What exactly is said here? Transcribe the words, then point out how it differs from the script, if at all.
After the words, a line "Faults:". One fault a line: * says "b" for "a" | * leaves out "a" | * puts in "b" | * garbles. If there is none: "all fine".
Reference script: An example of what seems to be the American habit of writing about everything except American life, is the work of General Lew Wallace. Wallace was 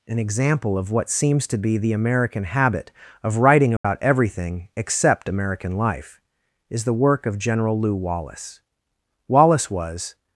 An example of what seems to be the American habit of writing about everything except American life, is the work of General Lew Wallace. Wallace was
Faults:
all fine